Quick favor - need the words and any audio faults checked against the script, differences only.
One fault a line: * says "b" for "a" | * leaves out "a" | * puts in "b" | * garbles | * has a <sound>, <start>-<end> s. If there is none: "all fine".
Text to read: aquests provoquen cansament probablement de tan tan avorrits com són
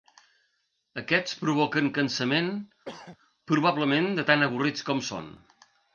* has a throat clearing, 2.8-3.2 s
* leaves out "tan"